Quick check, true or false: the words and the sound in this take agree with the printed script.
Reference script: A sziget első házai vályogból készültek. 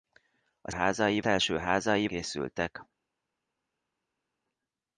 false